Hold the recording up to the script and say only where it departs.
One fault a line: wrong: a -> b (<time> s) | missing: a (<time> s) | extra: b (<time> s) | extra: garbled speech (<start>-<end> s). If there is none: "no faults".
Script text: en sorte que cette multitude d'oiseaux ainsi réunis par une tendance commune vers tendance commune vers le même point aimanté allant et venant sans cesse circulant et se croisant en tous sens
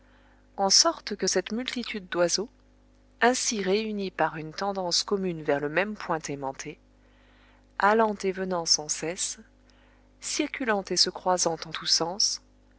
missing: tendance commune vers (5.6 s)